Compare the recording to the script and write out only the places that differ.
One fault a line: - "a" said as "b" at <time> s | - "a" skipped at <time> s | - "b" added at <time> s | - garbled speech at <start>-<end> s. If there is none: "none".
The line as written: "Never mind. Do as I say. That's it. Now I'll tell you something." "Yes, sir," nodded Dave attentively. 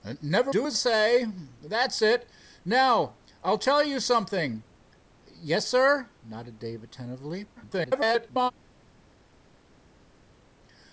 - "mind" skipped at 0.5 s
- "I" skipped at 0.8 s
- garbled speech at 7.6-8.5 s